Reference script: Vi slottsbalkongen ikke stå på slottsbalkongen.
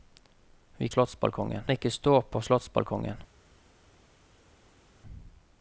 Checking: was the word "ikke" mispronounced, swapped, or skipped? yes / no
no